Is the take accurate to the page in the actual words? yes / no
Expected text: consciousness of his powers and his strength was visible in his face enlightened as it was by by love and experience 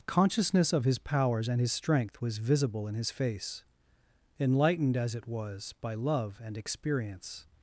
no